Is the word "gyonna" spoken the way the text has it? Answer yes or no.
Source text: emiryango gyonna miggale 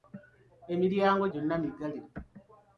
yes